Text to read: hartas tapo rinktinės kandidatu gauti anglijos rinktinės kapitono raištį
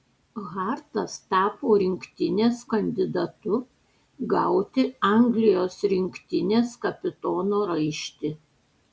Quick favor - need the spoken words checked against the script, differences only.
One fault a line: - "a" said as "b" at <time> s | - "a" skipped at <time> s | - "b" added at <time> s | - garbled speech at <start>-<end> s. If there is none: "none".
none